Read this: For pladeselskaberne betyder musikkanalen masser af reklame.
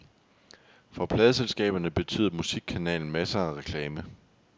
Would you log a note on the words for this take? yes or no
no